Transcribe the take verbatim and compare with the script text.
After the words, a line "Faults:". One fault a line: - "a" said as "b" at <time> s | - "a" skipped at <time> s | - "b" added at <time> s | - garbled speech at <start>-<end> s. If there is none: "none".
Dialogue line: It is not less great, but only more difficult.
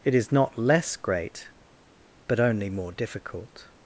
It is not less great, but only more difficult.
Faults:
none